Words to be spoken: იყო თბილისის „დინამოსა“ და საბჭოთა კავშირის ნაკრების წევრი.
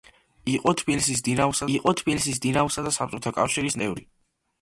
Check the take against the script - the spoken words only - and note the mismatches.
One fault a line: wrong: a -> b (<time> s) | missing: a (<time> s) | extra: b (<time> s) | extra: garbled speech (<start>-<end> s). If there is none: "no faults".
extra: იყო თბილისის დინამოსა (1.7 s)
missing: ნაკრების (3.8 s)